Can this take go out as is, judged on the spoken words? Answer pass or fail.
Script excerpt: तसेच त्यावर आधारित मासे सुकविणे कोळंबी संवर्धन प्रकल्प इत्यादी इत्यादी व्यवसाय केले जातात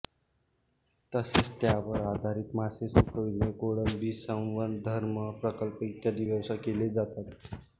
fail